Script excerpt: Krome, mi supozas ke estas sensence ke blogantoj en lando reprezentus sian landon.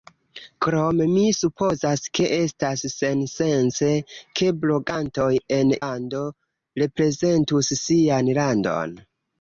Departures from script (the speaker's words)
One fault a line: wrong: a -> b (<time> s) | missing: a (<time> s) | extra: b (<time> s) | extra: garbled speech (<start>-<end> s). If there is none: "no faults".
no faults